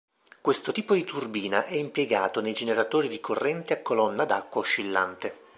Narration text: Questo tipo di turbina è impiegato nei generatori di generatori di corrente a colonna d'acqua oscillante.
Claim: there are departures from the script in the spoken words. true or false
true